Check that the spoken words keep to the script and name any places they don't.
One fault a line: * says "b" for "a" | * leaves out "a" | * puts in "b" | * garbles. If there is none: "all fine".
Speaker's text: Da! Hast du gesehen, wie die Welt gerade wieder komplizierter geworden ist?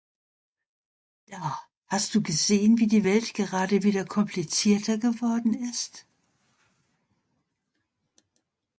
all fine